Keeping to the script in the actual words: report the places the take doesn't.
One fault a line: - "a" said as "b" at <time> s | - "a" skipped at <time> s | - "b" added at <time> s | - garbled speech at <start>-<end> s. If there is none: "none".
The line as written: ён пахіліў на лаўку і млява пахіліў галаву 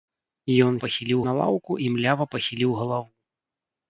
none